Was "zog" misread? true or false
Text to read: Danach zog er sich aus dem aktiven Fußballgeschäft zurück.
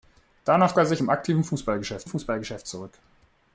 true